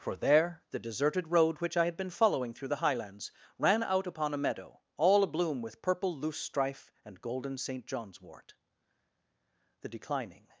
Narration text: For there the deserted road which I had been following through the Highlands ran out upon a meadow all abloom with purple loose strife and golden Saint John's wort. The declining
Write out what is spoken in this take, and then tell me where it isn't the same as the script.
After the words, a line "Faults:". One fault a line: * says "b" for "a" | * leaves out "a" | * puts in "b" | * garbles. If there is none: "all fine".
For there the deserted road which I had been following through the Highlands ran out upon a meadow all abloom with purple loose strife and golden Saint John's wort. The declining
Faults:
all fine